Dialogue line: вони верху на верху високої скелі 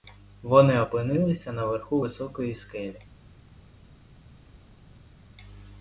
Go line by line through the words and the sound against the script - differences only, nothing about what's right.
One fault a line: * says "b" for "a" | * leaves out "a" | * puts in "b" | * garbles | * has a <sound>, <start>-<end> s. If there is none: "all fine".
* says "опинилися" for "верху"